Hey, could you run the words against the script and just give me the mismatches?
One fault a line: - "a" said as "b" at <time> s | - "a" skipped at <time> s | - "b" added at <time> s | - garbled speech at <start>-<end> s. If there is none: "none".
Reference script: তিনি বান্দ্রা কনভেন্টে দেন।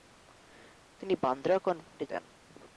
none